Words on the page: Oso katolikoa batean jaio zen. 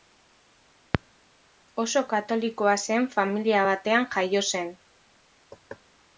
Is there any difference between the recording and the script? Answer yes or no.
yes